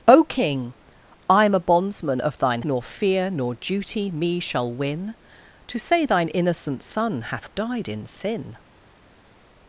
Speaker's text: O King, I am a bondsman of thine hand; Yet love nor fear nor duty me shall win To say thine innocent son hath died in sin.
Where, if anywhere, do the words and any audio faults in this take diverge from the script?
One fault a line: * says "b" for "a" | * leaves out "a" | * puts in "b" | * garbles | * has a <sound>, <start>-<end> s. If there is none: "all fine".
* leaves out "hand Yet love"